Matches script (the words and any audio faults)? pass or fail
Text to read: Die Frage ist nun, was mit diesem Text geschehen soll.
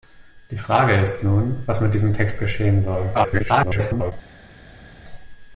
fail